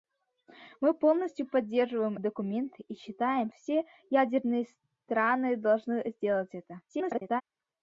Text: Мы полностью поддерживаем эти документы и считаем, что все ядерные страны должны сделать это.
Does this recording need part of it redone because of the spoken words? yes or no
yes